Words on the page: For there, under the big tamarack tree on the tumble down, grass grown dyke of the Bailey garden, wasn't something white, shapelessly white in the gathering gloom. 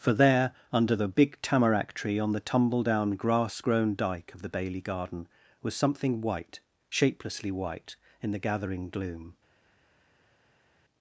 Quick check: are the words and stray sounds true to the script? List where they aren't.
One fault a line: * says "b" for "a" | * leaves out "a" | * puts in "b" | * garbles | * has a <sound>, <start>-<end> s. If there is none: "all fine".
* says "was" for "wasn't"